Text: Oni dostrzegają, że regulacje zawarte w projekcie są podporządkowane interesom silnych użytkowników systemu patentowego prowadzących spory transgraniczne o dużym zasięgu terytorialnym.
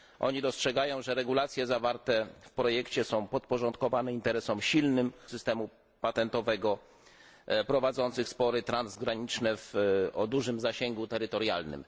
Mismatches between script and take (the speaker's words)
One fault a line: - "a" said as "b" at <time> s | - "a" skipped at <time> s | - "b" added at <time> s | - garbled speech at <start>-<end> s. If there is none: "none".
- "użytkowników" skipped at 5.0 s